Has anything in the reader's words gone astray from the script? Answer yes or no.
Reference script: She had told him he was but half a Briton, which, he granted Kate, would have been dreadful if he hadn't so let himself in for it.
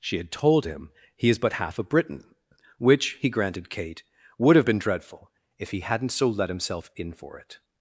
yes